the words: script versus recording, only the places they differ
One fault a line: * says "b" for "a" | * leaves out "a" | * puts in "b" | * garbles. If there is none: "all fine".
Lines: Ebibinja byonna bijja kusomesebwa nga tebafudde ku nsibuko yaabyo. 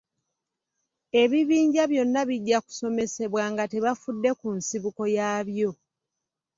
all fine